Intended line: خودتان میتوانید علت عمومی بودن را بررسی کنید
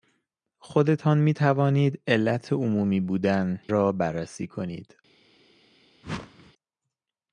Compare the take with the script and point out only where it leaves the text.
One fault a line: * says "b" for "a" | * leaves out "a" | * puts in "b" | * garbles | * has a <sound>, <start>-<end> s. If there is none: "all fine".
* has a whoosh, 6.0-6.5 s